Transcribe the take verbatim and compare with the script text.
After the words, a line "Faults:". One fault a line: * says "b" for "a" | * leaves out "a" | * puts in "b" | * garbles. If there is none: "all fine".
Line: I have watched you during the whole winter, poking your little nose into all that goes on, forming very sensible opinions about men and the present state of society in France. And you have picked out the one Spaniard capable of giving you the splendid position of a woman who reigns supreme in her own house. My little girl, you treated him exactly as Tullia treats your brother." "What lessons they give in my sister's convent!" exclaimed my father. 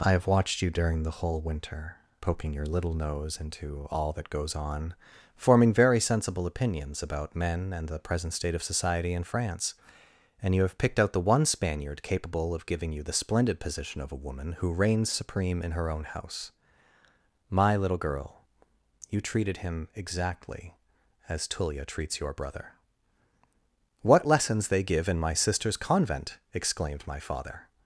I have watched you during the whole winter, poking your little nose into all that goes on, forming very sensible opinions about men and the present state of society in France. And you have picked out the one Spaniard capable of giving you the splendid position of a woman who reigns supreme in her own house. My little girl, you treated him exactly as Tullia treats your brother." "What lessons they give in my sister's convent!" exclaimed my father.
Faults:
all fine